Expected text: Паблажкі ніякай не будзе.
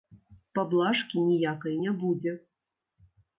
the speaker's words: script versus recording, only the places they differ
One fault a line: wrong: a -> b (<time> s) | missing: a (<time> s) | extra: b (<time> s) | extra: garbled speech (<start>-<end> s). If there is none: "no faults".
no faults